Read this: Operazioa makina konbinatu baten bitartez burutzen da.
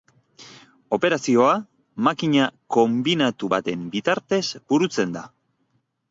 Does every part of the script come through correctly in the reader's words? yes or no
yes